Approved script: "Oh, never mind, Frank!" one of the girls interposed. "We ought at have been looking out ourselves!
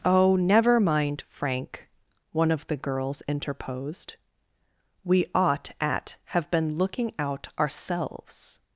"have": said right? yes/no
yes